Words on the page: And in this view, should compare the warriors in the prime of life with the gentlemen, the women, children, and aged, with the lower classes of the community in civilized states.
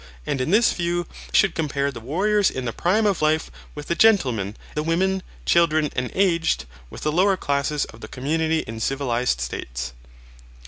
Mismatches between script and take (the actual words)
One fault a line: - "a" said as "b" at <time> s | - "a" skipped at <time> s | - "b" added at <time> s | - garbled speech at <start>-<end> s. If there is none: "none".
none